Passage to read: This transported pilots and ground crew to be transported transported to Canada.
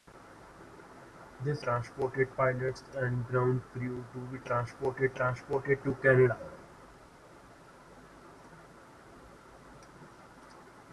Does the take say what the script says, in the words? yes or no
yes